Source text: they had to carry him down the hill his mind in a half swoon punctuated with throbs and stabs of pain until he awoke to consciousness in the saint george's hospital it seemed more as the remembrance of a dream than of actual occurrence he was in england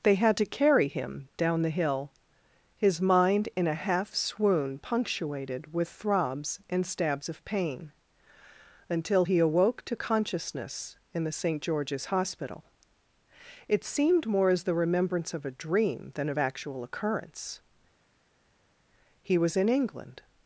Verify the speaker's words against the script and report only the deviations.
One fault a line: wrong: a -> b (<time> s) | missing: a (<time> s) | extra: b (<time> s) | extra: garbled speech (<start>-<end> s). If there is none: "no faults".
no faults